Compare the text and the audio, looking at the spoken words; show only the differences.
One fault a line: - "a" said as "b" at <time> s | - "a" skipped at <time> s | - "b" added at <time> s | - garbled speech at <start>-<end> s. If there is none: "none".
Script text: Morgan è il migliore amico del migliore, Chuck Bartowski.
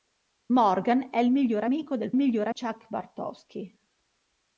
none